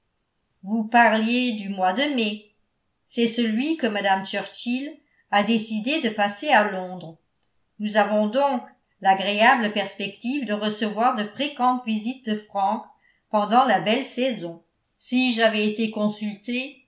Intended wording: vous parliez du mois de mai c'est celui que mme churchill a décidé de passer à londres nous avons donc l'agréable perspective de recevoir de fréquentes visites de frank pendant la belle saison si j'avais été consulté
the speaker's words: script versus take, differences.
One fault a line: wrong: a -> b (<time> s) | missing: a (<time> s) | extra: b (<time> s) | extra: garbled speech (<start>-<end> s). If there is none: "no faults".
no faults